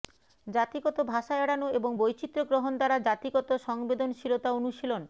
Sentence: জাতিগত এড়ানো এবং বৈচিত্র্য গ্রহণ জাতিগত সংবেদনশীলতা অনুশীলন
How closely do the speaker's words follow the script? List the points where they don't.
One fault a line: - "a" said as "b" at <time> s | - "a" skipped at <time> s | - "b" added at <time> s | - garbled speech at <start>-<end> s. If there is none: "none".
- "ভাষা" added at 1.1 s
- "দ্বারা" added at 2.8 s